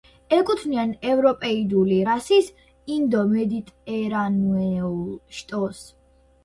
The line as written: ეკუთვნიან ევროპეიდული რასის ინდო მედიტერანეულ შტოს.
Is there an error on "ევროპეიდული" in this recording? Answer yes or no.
no